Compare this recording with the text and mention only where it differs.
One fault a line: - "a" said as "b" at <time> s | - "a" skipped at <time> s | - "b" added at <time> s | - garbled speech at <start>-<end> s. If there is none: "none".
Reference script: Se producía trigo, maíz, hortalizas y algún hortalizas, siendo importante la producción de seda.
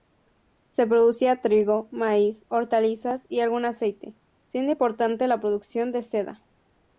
- "hortalizas" said as "aceite" at 3.6 s